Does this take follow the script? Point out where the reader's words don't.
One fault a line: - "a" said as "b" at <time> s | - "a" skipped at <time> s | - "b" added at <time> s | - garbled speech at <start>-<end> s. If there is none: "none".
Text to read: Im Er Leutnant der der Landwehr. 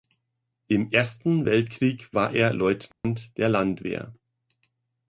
- "Ersten Weltkrieg war" added at 0.9 s
- "der" skipped at 3.5 s